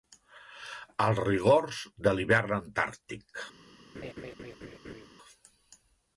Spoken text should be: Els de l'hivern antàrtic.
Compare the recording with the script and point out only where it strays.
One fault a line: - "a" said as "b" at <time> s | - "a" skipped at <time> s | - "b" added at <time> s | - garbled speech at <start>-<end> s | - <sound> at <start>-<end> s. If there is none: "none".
- "rigors" added at 1.3 s
- laugh at 3.9-5.1 s